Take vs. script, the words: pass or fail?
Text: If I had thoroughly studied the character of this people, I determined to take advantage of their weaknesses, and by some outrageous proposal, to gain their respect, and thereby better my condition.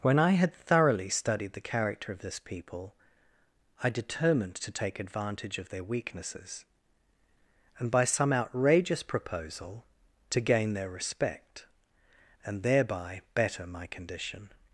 fail